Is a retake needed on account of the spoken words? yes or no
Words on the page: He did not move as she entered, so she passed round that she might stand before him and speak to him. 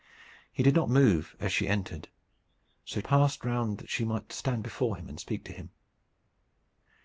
yes